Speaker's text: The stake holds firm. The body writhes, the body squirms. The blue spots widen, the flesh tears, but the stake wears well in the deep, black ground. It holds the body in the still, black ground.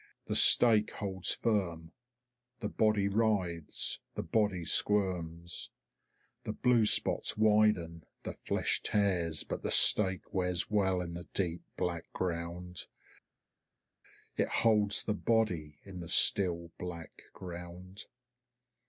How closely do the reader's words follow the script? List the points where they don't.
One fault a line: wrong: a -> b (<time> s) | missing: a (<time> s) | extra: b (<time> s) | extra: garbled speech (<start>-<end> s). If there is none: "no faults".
no faults